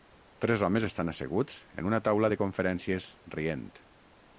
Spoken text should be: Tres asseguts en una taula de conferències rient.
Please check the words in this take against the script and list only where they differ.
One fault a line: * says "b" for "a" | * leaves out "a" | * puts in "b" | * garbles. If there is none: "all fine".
* puts in "homes estan"